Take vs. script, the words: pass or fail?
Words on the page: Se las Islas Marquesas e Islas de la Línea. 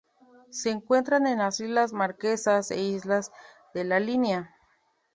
fail